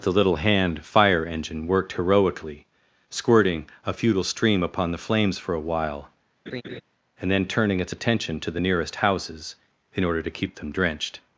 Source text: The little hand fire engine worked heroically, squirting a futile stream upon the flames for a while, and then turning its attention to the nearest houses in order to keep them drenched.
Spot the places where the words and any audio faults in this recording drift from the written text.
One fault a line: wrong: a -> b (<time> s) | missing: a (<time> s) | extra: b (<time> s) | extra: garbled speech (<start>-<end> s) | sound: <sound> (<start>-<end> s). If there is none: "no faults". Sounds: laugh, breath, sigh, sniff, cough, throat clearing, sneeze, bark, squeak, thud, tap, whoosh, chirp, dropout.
sound: laugh (6.5-6.8 s)